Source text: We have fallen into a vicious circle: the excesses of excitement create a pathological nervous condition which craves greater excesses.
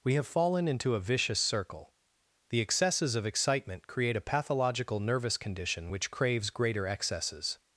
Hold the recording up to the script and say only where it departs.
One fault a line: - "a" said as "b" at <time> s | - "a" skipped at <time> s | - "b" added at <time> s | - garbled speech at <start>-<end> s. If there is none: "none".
none